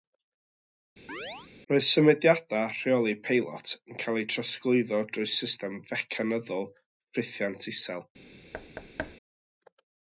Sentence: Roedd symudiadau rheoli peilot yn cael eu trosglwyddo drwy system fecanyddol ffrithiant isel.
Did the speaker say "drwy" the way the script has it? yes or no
yes